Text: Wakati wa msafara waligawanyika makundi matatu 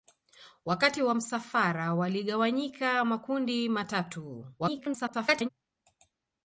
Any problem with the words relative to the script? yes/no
yes